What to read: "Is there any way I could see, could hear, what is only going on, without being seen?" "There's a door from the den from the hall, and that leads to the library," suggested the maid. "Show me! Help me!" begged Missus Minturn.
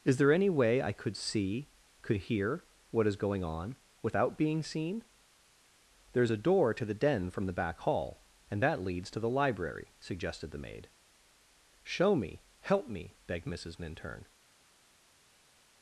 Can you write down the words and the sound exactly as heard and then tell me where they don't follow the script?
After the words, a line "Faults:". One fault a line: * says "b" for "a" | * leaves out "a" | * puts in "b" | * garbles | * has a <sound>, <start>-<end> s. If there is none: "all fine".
"Is there any way I could see, could hear, what is going on, without being seen?" "There's a door to the den from the back hall, and that leads to the library," suggested the maid. "Show me! Help me!" begged Missus Minturn.
Faults:
* leaves out "only"
* says "to" for "from"
* puts in "back"